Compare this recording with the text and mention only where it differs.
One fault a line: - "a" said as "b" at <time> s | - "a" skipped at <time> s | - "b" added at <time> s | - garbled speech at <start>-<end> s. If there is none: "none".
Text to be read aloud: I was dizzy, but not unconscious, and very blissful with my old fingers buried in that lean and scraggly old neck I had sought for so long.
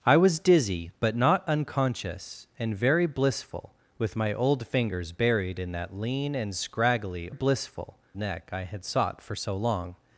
- "old" said as "blissful" at 7.3 s